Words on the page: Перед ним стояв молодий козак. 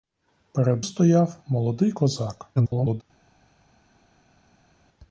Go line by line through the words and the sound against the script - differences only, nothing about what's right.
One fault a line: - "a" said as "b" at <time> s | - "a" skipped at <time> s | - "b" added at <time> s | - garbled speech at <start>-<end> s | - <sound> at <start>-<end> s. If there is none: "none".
- "ним" skipped at 0.8 s
- garbled speech at 2.6-3.0 s